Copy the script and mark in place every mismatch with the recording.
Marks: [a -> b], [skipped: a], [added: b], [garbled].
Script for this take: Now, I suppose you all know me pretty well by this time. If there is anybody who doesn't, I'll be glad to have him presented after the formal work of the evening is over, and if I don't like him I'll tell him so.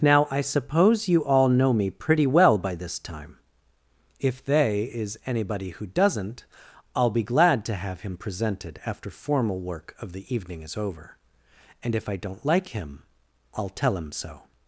Now, I suppose you all know me pretty well by this time. If [there -> they] is anybody who doesn't, I'll be glad to have him presented after [skipped: the] formal work of the evening is over, and if I don't like him I'll tell him so.